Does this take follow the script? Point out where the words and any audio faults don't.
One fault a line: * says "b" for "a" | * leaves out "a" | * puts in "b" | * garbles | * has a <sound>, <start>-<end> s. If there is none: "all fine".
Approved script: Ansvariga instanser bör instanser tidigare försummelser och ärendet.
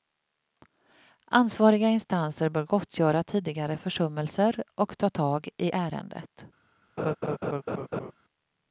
* says "gottgöra" for "instanser"
* puts in "ta tag i"
* has a laugh, 7.0-8.1 s